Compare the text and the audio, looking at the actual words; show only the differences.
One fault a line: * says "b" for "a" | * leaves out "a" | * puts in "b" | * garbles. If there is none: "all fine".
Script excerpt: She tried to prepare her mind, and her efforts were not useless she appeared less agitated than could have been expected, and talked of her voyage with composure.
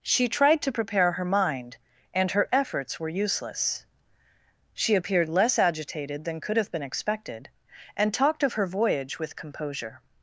* leaves out "not"